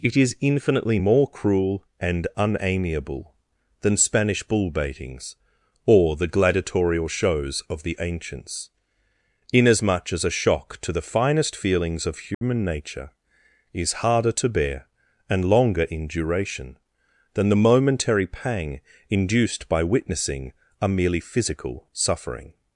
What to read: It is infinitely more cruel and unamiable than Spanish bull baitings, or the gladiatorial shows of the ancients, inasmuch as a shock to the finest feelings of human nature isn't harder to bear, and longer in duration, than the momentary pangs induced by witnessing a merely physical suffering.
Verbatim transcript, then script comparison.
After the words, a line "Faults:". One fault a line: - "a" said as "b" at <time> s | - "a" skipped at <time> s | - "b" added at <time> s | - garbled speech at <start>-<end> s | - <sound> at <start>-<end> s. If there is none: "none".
It is infinitely more cruel and unamiable than Spanish bull baitings, or the gladiatorial shows of the ancients, inasmuch as a shock to the finest feelings of human nature is harder to bear, and longer in duration, than the momentary pang induced by witnessing a merely physical suffering.
Faults:
- dropout at 12.3-12.4 s
- "isn't" said as "is" at 13.7 s
- "pangs" said as "pang" at 18.3 s